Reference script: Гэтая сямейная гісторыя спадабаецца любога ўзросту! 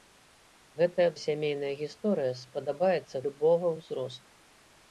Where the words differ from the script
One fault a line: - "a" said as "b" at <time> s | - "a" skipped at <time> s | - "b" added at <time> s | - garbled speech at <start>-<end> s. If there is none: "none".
none